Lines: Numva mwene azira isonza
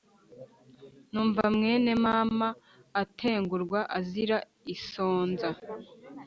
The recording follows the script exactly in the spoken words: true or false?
false